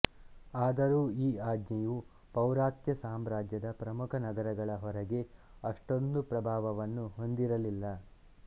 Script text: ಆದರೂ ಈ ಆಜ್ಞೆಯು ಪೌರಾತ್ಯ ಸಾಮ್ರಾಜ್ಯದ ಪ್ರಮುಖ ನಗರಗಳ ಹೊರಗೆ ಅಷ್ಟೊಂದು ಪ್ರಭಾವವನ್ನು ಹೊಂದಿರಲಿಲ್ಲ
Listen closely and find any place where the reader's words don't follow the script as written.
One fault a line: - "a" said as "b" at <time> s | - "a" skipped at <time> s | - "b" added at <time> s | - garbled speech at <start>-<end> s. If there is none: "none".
none